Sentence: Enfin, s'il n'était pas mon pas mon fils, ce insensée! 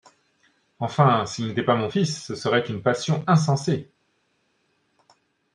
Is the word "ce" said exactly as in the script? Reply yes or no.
no